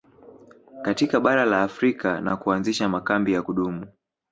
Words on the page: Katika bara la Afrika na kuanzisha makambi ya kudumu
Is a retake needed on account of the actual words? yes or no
no